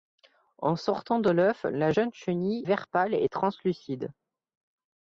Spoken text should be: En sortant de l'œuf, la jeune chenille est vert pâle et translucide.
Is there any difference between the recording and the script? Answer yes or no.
yes